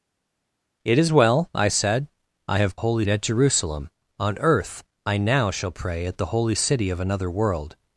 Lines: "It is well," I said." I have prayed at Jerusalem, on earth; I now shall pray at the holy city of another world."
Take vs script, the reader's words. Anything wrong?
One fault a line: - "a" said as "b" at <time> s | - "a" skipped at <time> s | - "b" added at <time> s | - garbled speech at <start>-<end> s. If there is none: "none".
- "prayed" said as "holy" at 2.8 s